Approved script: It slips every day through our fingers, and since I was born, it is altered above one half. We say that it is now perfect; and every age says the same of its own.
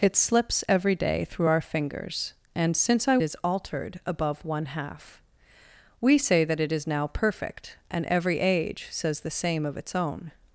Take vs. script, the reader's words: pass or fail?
fail